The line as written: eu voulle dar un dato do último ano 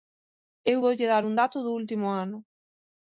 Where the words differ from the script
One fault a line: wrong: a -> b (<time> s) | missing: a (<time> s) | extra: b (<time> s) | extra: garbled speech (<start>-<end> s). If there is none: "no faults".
no faults